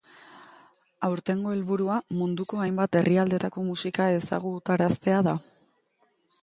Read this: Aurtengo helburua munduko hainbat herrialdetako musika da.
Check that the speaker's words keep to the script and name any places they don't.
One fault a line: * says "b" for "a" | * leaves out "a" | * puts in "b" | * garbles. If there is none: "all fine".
* puts in "ezagutaraztea"